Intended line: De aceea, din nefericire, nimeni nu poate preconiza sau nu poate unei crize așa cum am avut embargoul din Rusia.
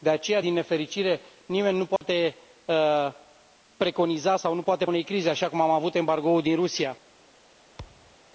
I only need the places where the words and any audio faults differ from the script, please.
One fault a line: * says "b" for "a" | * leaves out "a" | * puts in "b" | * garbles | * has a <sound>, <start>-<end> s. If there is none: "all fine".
* has a dropout, 2.0-2.0 s
* has a thud, 7.8-8.2 s